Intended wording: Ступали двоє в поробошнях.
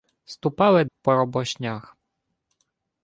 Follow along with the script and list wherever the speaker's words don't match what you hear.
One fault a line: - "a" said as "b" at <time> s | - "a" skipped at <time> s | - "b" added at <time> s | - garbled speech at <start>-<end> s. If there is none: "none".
- "двоє в" skipped at 0.8 s